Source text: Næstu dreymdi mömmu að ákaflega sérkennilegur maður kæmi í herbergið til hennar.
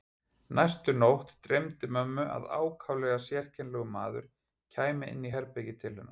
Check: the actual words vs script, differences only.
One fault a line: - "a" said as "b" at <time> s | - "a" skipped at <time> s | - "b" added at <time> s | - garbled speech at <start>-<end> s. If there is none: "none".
- "nótt" added at 1.0 s
- "inn" added at 5.2 s